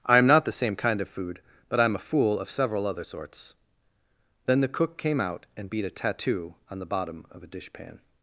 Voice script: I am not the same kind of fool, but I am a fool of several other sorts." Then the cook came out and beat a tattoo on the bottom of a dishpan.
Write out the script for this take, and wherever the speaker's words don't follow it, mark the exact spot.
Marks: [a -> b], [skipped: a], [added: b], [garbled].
I am not the same kind of [fool, -> food] but I am a fool of several other sorts." Then the cook came out and beat a tattoo on the bottom of a dishpan.